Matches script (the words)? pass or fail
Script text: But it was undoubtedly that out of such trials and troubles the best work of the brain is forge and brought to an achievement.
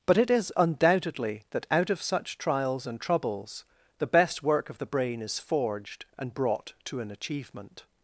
fail